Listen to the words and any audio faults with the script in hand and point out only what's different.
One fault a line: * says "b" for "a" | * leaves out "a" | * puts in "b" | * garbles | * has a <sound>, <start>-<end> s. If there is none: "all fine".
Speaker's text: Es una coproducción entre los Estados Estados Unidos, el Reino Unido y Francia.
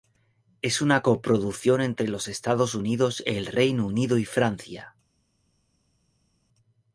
* leaves out "Estados"